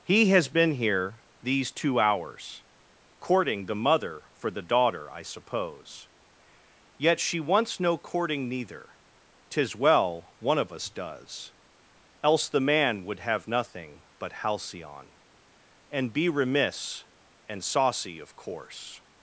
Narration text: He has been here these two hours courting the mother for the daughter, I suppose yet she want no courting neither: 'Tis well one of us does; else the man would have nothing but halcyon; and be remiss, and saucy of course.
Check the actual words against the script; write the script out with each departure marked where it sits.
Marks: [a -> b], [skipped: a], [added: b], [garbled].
He has been here these two hours courting the mother for the daughter, I suppose yet she [want -> wants] no courting neither: 'Tis well one of us does; else the man would have nothing but halcyon; and be remiss, and saucy of course.